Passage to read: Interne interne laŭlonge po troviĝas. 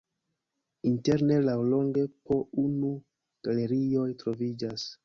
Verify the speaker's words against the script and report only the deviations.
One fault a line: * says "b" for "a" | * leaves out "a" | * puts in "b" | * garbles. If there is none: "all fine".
* leaves out "interne"
* puts in "unu galerioj"